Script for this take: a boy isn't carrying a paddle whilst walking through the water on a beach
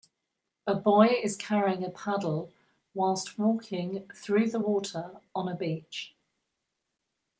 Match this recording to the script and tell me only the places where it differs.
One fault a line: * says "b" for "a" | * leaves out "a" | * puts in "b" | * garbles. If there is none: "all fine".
* says "is" for "isn't"